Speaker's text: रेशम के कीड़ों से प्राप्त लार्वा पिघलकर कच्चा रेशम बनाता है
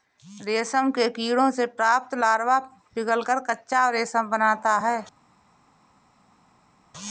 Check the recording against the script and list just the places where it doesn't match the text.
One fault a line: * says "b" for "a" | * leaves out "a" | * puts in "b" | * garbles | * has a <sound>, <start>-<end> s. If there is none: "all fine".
all fine